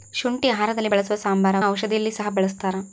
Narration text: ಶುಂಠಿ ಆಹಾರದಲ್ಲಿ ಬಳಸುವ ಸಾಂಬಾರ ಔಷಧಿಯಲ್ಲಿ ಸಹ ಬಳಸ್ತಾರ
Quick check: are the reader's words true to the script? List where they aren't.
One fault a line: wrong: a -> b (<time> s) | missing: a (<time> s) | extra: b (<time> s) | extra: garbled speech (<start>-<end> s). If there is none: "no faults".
no faults